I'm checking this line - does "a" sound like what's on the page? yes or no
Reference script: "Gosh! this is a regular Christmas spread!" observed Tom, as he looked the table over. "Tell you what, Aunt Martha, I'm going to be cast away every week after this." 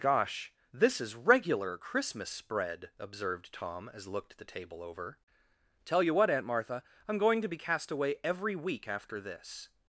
no